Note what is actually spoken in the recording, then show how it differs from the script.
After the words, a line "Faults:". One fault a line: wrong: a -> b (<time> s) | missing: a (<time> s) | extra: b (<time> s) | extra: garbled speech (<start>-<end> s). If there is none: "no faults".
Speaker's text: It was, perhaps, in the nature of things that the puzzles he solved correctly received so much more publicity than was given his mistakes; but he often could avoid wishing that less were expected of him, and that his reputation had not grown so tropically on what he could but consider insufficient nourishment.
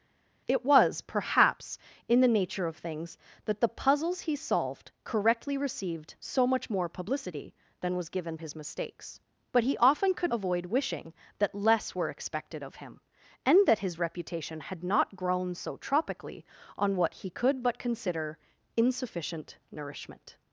It was, perhaps, in the nature of things that the puzzles he solved correctly received so much more publicity than was given his mistakes; but he often could avoid wishing that less were expected of him, and that his reputation had not grown so tropically on what he could but consider insufficient nourishment.
Faults:
no faults